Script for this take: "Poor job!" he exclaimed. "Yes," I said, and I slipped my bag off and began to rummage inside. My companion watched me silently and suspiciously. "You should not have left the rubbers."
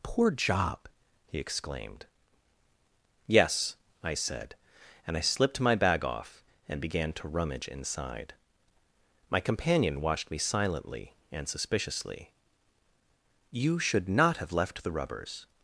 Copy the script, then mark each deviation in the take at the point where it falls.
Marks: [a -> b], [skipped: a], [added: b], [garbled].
"Poor job!" he exclaimed. "Yes," I said, and I slipped my bag off and began to rummage inside. My companion watched me silently and suspiciously. "You should not have left the rubbers."